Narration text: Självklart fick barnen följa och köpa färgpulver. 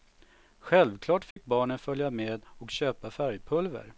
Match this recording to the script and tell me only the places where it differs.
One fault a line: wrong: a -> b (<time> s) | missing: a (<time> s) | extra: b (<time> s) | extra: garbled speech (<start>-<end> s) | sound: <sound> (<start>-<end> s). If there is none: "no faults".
sound: dropout (1.3-1.4 s)
extra: med (2.1 s)